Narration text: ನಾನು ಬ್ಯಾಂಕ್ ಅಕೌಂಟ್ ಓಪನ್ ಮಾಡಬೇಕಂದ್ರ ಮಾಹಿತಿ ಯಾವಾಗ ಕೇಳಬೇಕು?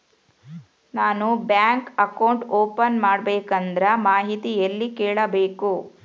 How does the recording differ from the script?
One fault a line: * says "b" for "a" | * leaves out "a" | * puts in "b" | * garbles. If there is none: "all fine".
* says "ಎಲ್ಲಿ" for "ಯಾವಾಗ"